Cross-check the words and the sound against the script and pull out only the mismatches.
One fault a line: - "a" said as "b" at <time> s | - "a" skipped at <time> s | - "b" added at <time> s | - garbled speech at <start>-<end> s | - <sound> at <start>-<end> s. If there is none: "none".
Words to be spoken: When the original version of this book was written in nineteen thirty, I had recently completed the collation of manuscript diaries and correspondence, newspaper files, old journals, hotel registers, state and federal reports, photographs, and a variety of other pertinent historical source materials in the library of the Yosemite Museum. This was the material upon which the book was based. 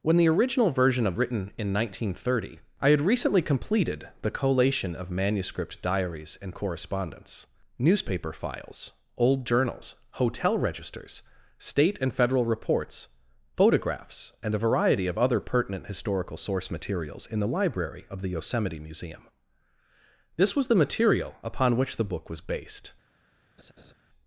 - "this book was" skipped at 1.2 s
- laugh at 23.6-23.9 s